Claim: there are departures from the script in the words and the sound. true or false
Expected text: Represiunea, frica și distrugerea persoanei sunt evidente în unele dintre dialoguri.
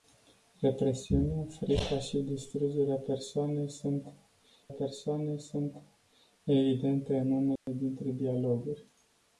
true